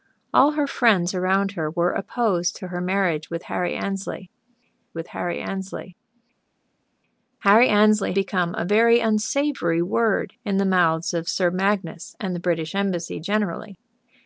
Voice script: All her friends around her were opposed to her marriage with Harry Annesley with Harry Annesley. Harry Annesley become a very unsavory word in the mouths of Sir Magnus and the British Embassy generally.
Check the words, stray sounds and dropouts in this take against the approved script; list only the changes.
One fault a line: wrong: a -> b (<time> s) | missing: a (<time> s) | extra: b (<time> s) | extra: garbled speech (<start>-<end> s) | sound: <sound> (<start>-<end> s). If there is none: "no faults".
no faults